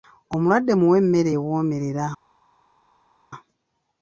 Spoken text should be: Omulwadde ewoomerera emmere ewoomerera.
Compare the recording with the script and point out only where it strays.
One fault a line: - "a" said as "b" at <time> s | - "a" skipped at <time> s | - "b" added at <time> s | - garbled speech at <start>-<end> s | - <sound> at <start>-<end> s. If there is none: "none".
- "ewoomerera" said as "muwe" at 0.8 s